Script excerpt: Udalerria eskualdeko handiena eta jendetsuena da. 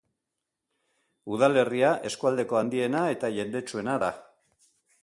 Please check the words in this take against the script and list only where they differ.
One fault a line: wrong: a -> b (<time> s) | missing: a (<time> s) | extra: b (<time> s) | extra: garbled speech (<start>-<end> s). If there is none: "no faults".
no faults